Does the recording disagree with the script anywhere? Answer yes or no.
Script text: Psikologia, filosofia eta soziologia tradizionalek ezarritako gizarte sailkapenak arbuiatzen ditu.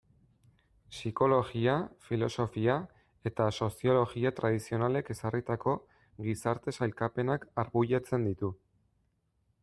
no